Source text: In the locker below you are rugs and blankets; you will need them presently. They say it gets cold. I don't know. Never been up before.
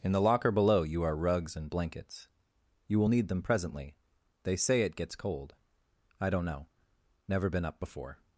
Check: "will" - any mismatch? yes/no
no